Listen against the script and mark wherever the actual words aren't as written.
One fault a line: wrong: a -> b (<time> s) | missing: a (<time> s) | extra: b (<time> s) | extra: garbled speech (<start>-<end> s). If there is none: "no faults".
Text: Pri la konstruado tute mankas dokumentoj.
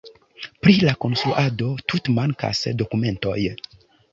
no faults